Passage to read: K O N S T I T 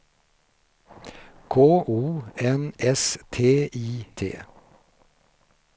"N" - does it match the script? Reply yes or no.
yes